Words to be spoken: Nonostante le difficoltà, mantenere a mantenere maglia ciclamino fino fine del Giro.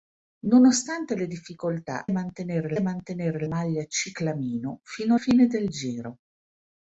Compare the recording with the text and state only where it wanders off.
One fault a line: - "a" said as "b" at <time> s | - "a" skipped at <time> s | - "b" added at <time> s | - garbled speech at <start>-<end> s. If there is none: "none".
none